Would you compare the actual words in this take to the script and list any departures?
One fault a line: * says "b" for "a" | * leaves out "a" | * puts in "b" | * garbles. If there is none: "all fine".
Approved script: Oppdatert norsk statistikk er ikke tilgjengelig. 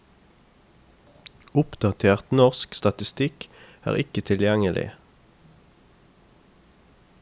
all fine